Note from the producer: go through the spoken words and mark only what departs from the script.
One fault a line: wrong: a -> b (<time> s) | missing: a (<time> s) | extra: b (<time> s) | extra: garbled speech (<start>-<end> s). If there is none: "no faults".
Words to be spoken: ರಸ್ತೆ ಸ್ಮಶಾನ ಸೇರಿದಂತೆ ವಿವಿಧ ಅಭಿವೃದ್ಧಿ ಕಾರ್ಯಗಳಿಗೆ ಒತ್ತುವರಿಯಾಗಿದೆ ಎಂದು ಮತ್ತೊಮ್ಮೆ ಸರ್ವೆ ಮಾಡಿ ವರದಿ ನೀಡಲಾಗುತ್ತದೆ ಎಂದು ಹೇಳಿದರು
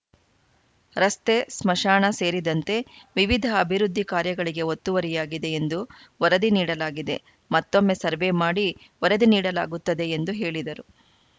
extra: ವರದಿ ನೀಡಲಾಗಿದೆ (6.2 s)